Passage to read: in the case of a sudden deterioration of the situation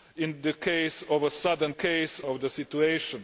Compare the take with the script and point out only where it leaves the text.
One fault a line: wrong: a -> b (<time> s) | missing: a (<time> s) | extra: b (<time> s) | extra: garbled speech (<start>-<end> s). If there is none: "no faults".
wrong: deterioration -> case (1.7 s)